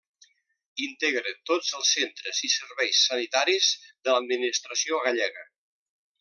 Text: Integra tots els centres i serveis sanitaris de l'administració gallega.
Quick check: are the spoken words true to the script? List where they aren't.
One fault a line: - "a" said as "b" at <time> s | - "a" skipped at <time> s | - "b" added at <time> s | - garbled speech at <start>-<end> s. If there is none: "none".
none